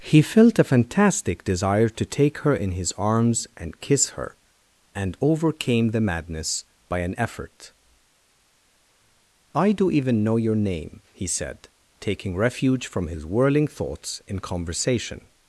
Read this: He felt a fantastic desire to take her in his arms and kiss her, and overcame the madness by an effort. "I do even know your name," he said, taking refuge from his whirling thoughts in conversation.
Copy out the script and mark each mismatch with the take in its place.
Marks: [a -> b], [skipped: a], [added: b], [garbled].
He felt a fantastic desire to take her in his arms and kiss her, and overcame the madness by an effort. "I do even know your name," he said, taking refuge from his whirling thoughts in conversation.